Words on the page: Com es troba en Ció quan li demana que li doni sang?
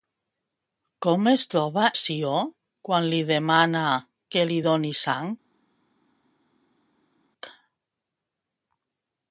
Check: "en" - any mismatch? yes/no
yes